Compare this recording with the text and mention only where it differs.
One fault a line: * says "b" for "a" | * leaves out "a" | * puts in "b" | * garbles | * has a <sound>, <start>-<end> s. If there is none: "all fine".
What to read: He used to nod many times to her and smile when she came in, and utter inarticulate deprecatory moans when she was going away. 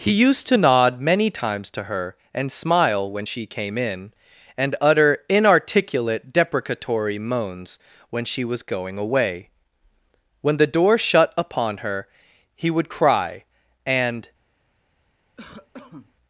* puts in "When the door shut upon her he would cry and"
* has a cough, 15.4-16.1 s